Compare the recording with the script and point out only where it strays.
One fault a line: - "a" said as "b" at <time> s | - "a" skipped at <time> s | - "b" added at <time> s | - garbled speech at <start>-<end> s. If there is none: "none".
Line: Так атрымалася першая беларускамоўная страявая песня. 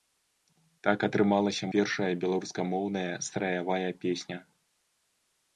none